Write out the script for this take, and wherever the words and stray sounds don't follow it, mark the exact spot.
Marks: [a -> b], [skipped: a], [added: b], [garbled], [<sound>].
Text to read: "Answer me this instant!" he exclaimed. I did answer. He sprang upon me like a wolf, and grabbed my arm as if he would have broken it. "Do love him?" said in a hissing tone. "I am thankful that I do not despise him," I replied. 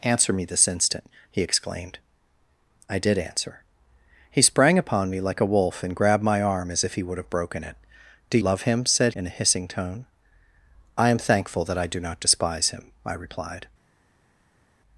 "Answer me this instant!" he exclaimed. I did answer. He sprang upon me like a wolf, and grabbed my arm as if he would have broken it. "Do love him?" said in a hissing tone. "I am thankful that I do not despise him," I replied.